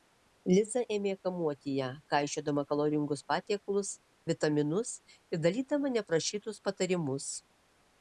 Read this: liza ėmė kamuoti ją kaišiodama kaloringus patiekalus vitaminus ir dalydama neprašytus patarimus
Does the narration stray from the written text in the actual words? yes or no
no